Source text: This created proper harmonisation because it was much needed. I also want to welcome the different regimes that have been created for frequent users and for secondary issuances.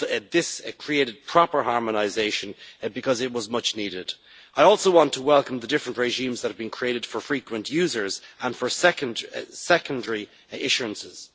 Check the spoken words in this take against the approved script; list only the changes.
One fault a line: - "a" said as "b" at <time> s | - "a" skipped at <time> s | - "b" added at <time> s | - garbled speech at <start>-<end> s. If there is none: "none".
none